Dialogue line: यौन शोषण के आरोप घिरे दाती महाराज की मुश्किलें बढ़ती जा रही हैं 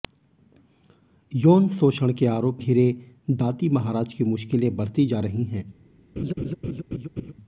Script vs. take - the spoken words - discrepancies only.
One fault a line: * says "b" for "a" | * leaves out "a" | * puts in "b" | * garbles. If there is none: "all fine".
all fine